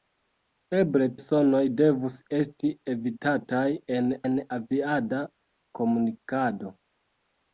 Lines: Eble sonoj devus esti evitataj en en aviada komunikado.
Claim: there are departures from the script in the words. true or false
false